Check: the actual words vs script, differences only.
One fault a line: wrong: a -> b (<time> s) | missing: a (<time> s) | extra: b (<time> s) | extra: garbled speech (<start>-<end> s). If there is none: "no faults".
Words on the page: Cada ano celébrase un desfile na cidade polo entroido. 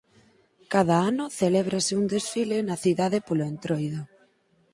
no faults